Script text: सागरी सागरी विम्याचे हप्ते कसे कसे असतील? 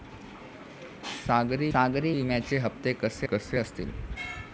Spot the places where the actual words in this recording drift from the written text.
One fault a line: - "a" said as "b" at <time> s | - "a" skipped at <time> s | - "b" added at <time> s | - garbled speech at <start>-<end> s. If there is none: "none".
none